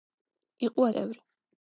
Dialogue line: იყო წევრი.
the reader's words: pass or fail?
pass